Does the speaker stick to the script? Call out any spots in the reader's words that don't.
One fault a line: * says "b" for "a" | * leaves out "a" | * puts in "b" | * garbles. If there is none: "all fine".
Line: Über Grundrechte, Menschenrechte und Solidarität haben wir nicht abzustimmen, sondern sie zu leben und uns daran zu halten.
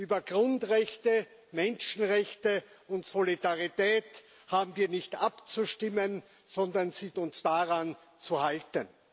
* leaves out "zu leben und"